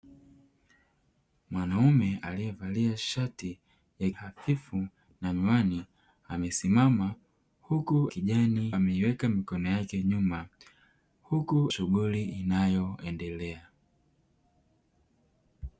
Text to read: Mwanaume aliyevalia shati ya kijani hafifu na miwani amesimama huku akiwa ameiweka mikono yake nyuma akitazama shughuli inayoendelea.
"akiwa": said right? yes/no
no